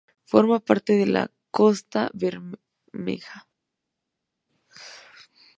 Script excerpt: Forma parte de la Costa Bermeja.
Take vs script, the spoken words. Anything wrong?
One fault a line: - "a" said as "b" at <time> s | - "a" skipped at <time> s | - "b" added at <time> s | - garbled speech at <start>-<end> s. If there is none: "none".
none